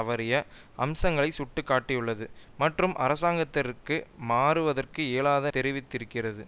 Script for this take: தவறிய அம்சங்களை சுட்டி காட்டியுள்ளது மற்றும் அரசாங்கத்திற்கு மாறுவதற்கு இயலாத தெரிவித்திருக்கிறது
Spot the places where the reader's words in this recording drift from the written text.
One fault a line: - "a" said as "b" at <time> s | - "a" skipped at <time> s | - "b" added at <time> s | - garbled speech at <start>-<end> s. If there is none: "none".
none